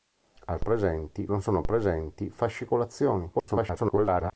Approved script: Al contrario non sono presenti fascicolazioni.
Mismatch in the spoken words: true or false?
true